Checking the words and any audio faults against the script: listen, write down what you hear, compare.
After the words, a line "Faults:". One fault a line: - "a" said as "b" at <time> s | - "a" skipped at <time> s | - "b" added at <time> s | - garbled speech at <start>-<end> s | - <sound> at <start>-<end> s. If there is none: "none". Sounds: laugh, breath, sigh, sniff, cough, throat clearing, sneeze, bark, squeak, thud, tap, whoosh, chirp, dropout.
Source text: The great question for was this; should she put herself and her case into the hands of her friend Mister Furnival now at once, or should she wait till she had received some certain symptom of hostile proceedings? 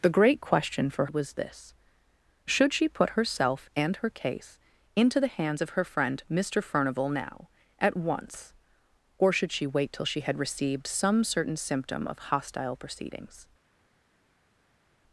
The great question for was this; should she put herself and her case into the hands of her friend Mister Furnival now at once, or should she wait till she had received some certain symptom of hostile proceedings?
Faults:
none